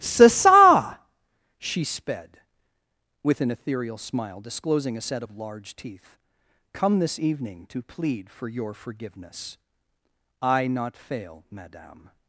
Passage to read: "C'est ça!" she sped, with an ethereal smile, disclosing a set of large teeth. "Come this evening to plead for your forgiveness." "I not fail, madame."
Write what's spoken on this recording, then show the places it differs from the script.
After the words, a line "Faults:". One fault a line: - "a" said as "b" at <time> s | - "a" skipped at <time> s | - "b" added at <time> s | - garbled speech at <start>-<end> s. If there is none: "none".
"C'est ça!" she sped, with an ethereal smile, disclosing a set of large teeth. "Come this evening to plead for your forgiveness." "I not fail, madame."
Faults:
none